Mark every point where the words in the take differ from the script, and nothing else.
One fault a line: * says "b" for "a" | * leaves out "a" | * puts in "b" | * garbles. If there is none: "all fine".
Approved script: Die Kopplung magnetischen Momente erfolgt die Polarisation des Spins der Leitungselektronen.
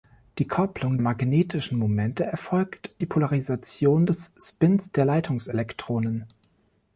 all fine